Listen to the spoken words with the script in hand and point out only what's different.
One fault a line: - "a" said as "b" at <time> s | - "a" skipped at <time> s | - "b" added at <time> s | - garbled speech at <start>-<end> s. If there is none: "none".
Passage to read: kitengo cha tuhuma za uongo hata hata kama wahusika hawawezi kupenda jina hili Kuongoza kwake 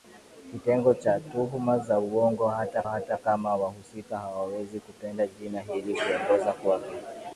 none